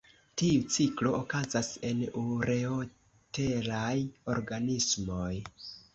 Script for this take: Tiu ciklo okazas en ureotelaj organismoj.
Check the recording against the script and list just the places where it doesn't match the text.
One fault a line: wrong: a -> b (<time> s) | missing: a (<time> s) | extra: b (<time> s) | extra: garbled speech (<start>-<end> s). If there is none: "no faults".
no faults